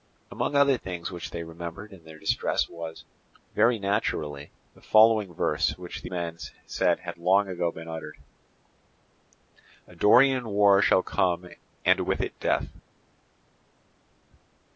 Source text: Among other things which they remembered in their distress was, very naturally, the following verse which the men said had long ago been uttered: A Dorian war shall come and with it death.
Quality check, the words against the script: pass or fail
pass